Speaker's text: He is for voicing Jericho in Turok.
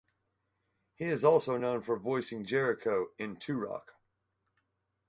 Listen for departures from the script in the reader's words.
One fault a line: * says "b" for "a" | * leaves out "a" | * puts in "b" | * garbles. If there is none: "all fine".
* puts in "also known"